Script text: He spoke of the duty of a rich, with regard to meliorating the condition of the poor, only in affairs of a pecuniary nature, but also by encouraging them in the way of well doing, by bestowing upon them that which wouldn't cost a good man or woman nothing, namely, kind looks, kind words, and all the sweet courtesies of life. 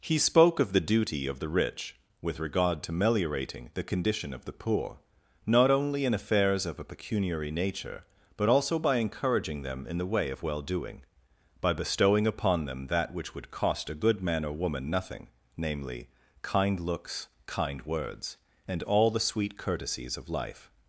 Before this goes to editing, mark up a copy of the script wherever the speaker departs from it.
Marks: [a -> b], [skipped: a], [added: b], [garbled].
He spoke of the duty of [a -> the] rich, with regard to meliorating the condition of the poor, [added: not] only in affairs of a pecuniary nature, but also by encouraging them in the way of well doing, by bestowing upon them that which [wouldn't -> would] cost a good man or woman nothing, namely, kind looks, kind words, and all the sweet courtesies of life.